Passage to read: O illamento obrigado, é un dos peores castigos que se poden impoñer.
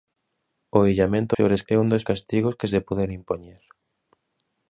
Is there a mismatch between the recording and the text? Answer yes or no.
yes